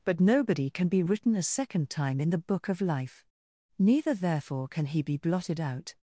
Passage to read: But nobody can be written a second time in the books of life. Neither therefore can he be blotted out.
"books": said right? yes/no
no